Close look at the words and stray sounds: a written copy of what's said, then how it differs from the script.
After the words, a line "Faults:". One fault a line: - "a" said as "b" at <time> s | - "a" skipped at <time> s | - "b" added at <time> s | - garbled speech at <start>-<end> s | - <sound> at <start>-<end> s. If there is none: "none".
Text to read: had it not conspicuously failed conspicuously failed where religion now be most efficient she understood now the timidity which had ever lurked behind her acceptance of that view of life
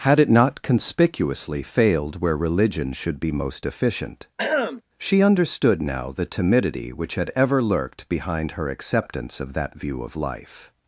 had it not conspicuously failed where religion should be most efficient she understood now the timidity which had ever lurked behind her acceptance of that view of life
Faults:
- "conspicuously failed" skipped at 2.2 s
- "now" said as "should" at 2.9 s
- throat clearing at 4.4-4.8 s